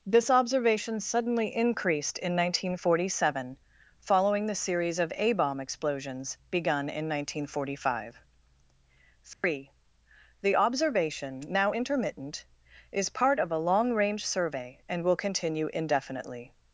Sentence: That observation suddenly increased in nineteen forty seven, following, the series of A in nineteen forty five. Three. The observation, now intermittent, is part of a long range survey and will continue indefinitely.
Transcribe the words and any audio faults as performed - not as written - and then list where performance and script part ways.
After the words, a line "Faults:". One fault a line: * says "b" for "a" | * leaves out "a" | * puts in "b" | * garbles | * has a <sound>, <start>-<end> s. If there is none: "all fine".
This observation suddenly increased in nineteen forty seven, following, the series of A bomb explosions begun in nineteen forty five. Three. The observation, now intermittent, is part of a long range survey and will continue indefinitely.
Faults:
* says "This" for "That"
* puts in "bomb explosions begun"
* has a dropout, 9.3-9.4 s